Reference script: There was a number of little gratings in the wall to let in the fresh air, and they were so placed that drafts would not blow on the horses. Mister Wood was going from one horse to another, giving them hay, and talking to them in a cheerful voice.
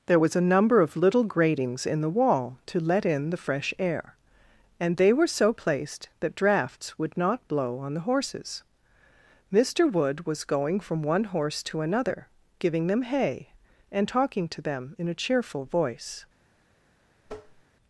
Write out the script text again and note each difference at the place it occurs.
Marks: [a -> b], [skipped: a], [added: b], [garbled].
There was a number of little gratings in the wall to let in the fresh air, and they were so placed that drafts would not blow on the horses. Mister Wood was going from one horse to another, giving them hay, and talking to them in a cheerful voice.